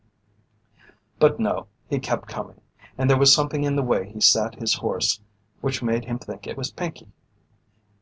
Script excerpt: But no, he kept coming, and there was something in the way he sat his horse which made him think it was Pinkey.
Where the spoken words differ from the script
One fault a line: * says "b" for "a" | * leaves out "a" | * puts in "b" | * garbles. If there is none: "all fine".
all fine